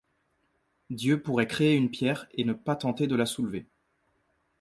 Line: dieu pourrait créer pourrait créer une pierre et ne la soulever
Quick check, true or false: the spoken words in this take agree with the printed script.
false